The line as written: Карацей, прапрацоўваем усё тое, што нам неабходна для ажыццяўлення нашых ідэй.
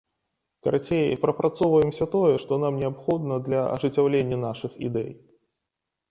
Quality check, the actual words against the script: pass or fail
pass